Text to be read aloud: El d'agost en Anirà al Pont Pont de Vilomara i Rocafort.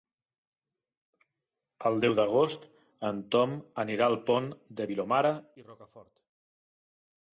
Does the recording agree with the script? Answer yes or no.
no